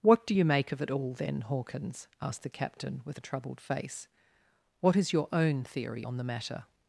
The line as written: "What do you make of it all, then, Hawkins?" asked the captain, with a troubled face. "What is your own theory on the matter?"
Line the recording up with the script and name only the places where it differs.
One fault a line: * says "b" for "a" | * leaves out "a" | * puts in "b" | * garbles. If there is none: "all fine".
all fine